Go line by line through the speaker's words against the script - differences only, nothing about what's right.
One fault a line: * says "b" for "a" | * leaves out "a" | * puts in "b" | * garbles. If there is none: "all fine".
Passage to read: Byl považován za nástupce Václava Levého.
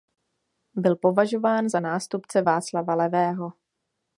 all fine